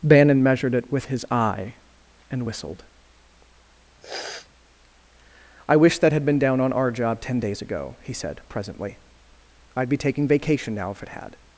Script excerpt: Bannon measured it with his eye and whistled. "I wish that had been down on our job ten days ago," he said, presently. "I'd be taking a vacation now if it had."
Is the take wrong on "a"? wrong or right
wrong